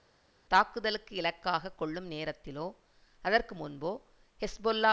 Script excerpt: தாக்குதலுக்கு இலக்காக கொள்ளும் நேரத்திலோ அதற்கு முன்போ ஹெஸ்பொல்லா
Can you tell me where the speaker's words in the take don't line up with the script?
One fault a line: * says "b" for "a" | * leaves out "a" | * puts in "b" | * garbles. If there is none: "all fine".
all fine